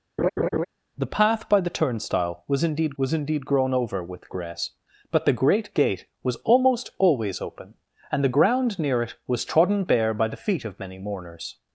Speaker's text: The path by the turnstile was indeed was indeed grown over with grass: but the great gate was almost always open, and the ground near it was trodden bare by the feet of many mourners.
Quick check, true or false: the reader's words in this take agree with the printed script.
true